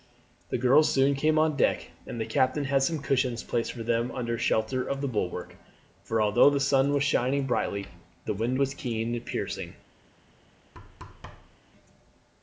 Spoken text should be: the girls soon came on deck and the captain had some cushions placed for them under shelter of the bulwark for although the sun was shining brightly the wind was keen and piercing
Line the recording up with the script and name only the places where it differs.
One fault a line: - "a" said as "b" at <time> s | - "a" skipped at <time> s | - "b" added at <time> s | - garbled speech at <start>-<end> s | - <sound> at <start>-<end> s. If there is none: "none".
- thud at 10.7-11.6 s